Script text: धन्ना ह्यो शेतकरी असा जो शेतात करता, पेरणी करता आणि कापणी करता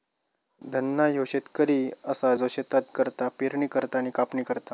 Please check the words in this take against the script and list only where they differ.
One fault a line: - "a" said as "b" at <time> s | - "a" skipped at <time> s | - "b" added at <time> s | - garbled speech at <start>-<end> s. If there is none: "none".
none